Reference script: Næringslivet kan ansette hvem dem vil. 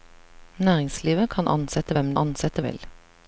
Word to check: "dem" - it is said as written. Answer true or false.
false